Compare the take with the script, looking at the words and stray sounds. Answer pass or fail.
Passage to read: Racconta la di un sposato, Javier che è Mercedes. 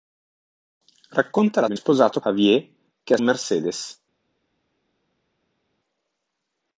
pass